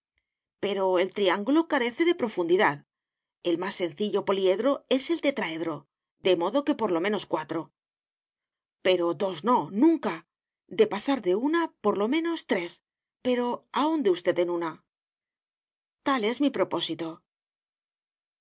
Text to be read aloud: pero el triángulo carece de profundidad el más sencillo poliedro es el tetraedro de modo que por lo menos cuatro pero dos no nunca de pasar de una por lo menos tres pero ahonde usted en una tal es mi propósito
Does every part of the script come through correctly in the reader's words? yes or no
yes